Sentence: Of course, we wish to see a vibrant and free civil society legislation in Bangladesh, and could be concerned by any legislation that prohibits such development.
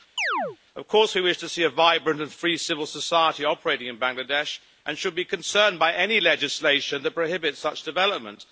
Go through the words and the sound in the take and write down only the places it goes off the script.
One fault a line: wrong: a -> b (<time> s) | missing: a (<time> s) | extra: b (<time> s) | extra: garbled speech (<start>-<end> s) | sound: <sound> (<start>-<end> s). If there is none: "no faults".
sound: chirp (0.2-0.6 s)
wrong: legislation -> operating (3.4 s)
wrong: could -> should (5.0 s)